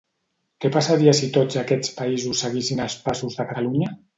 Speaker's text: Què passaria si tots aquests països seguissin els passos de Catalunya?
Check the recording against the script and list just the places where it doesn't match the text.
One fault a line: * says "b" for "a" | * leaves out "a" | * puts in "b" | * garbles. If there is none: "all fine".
all fine